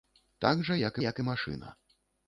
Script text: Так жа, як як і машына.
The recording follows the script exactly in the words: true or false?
true